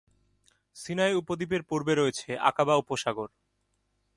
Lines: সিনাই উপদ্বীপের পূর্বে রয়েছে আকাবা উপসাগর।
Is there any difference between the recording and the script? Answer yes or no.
no